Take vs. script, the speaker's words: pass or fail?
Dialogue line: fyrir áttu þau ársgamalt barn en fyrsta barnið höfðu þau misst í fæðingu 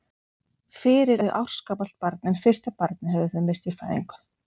fail